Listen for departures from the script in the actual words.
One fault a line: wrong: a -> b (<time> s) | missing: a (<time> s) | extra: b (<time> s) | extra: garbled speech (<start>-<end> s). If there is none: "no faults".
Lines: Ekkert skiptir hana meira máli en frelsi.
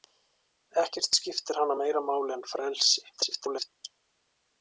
extra: garbled speech (3.1-3.7 s)